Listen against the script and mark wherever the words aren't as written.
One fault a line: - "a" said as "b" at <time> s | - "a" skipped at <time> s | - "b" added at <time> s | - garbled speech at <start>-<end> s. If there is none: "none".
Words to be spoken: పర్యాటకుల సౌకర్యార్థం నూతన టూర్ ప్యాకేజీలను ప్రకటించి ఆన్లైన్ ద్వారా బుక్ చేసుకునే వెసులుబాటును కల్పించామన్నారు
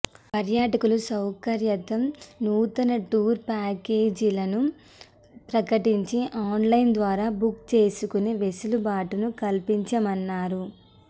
none